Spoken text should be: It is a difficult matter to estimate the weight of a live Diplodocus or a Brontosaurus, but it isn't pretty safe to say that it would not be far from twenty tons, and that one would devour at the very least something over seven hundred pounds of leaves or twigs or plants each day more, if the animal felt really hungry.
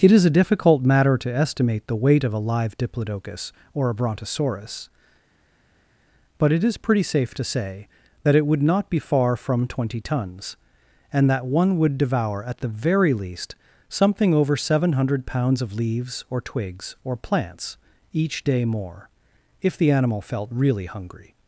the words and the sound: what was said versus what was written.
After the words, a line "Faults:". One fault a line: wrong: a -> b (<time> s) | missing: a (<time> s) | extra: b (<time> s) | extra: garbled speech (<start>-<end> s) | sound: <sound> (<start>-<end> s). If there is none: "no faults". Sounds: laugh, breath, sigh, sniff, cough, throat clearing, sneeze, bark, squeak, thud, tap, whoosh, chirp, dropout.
It is a difficult matter to estimate the weight of a live Diplodocus or a Brontosaurus, but it is pretty safe to say that it would not be far from twenty tons, and that one would devour at the very least something over seven hundred pounds of leaves or twigs or plants each day more, if the animal felt really hungry.
Faults:
wrong: isn't -> is (6.6 s)